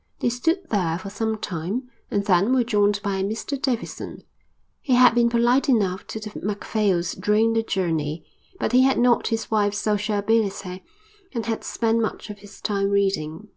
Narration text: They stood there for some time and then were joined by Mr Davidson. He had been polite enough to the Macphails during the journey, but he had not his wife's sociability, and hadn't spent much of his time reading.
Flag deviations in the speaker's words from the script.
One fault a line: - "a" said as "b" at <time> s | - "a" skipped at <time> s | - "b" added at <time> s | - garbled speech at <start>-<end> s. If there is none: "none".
- "hadn't" said as "had" at 11.5 s